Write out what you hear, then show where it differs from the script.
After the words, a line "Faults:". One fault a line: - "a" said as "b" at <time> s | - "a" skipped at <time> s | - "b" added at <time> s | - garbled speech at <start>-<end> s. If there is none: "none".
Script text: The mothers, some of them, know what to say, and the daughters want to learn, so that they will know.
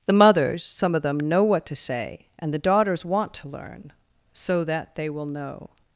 The mothers, some of them, know what to say, and the daughters want to learn, so that they will know.
Faults:
none